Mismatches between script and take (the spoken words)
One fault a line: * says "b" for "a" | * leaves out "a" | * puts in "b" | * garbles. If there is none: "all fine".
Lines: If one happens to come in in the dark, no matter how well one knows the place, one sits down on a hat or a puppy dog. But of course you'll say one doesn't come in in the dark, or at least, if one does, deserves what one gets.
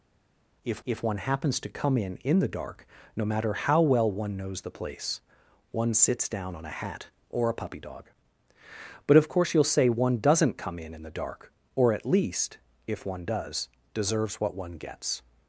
* puts in "if"